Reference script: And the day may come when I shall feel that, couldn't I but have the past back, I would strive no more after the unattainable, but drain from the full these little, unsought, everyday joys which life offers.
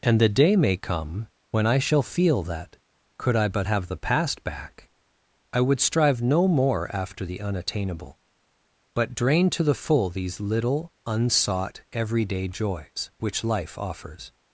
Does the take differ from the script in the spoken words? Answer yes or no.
yes